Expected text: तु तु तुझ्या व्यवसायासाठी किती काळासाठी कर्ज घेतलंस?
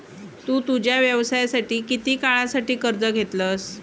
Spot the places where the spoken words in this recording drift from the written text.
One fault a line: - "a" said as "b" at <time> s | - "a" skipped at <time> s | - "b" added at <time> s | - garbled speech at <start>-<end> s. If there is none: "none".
- "तु" skipped at 0.6 s